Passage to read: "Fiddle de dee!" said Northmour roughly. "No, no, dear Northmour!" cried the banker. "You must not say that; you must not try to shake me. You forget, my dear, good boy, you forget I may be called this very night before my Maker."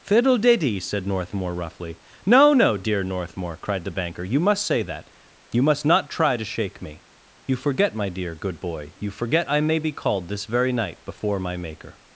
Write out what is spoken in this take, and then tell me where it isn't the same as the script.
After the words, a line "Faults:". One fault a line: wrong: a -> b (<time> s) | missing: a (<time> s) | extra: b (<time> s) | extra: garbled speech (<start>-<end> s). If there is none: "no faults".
"Fiddle de dee!" said Northmour roughly. "No, no, dear Northmour!" cried the banker. "You must say that; you must not try to shake me. You forget, my dear, good boy, you forget I may be called this very night before my Maker."
Faults:
missing: not (4.7 s)